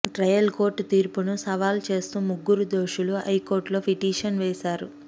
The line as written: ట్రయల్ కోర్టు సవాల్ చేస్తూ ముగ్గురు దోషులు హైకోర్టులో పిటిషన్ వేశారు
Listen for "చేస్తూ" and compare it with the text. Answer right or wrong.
right